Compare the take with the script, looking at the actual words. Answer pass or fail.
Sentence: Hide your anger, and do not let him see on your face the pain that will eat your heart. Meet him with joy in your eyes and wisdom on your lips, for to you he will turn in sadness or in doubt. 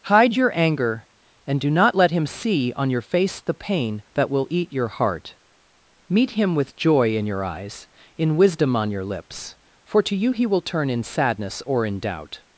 fail